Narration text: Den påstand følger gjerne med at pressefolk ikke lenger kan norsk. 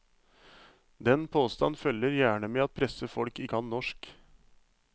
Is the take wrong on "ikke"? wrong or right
wrong